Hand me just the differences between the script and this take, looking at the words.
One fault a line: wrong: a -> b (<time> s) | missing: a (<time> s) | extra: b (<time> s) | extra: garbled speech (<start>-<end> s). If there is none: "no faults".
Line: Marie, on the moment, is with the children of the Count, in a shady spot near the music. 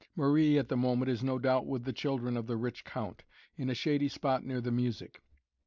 wrong: on -> at (0.6 s)
extra: no doubt (1.2 s)
extra: rich (2.6 s)